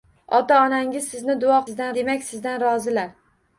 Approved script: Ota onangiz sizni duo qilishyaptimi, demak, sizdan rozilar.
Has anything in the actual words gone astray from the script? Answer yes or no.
yes